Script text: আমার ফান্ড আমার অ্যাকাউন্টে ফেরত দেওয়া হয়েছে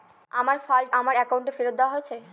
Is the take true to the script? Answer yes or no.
yes